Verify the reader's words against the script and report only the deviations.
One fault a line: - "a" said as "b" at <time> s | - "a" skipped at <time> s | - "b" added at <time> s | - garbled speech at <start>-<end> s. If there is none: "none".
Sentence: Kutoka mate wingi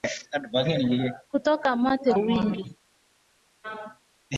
none